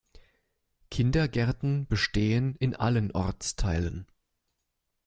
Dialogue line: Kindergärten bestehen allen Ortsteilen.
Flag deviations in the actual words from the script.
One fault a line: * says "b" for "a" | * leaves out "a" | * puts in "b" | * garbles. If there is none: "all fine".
* puts in "in"